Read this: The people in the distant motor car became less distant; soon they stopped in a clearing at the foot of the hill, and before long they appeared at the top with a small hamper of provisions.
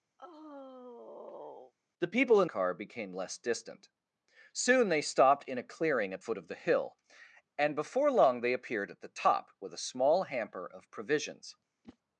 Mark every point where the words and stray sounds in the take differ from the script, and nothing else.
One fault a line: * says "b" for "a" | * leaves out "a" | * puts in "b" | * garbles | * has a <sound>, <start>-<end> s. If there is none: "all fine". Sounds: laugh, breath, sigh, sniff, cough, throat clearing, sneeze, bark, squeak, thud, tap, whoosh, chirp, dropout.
* has a sigh, 0.2-1.7 s
* leaves out "the distant motor"
* leaves out "the"
* has a whoosh, 11.8-12.0 s